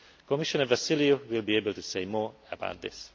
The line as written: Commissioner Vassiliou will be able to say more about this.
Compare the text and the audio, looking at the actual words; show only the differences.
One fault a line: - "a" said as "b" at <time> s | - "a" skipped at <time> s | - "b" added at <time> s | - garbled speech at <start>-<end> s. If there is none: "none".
none